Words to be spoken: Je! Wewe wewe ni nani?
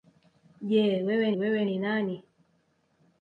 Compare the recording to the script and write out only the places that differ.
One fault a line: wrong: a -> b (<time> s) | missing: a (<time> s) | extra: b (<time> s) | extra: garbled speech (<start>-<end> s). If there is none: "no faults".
no faults